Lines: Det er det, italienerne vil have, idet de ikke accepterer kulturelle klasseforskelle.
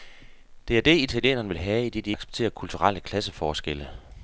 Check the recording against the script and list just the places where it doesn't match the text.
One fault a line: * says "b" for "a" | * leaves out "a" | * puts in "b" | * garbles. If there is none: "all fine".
* leaves out "ikke"